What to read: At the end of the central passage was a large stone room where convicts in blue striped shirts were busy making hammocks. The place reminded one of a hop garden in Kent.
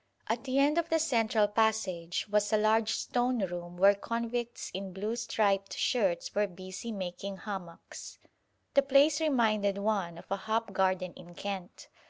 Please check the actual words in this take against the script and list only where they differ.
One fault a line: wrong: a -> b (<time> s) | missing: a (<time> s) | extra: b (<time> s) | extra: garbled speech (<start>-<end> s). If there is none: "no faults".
no faults